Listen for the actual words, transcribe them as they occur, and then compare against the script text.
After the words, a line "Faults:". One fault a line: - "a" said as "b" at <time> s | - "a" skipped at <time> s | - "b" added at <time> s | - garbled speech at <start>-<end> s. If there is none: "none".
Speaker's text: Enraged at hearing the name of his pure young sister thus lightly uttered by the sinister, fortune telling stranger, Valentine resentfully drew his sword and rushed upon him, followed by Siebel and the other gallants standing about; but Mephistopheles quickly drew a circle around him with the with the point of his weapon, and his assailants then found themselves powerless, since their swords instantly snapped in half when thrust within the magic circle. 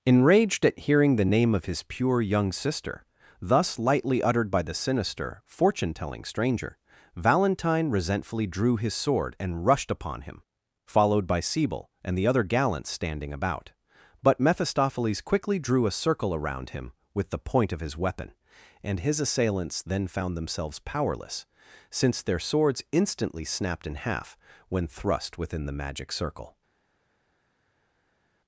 Enraged at hearing the name of his pure young sister thus lightly uttered by the sinister, fortune telling stranger, Valentine resentfully drew his sword and rushed upon him, followed by Siebel and the other gallants standing about; but Mephistopheles quickly drew a circle around him with the point of his weapon, and his assailants then found themselves powerless, since their swords instantly snapped in half when thrust within the magic circle.
Faults:
- "with the" skipped at 17.4 s